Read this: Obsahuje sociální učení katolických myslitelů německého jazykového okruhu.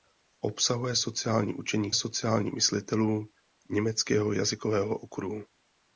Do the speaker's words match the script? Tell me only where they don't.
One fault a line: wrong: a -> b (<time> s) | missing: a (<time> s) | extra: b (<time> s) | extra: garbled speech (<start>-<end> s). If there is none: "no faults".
wrong: katolických -> sociální (1.9 s)